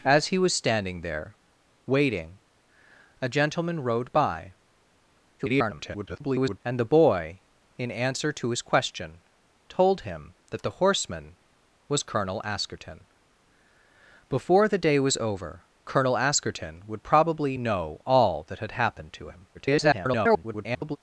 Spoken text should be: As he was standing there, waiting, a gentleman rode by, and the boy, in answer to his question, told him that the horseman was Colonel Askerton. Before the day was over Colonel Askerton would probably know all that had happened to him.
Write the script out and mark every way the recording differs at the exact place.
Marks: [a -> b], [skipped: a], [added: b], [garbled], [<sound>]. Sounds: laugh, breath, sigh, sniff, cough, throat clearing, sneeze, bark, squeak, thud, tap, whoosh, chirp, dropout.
As he was standing there, waiting, a gentleman rode by, [garbled] and the boy, in answer to his question, told him that the horseman was Colonel Askerton. Before the day was over Colonel Askerton would probably know all that had happened to him. [garbled]